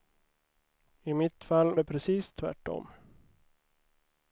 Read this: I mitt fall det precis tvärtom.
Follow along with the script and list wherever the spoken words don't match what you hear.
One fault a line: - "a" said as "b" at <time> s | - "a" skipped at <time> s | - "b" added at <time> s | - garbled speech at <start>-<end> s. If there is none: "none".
none